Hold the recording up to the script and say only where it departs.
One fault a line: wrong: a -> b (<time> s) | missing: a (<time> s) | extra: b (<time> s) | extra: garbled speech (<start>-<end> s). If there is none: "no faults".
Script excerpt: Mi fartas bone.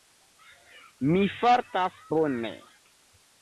no faults